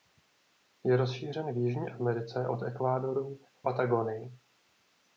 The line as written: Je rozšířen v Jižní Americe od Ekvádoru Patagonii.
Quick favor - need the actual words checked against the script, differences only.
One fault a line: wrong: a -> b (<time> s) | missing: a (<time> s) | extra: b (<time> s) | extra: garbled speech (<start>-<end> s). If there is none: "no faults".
no faults